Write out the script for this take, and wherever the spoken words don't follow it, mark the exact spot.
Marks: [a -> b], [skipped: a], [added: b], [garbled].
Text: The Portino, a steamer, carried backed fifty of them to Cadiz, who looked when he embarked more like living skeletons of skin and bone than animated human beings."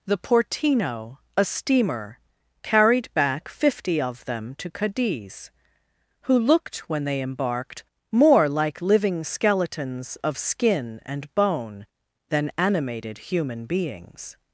The Portino, a steamer, carried [backed -> back] fifty of them to Cadiz, who looked when [he -> they] embarked more like living skeletons of skin and bone than animated human beings."